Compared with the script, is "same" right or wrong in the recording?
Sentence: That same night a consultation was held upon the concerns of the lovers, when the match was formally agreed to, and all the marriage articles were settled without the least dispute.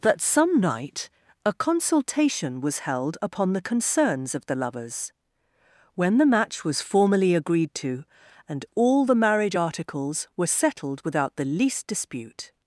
wrong